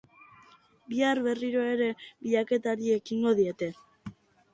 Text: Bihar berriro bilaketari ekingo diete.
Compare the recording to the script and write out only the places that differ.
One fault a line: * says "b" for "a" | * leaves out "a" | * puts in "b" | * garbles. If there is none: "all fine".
* puts in "ere"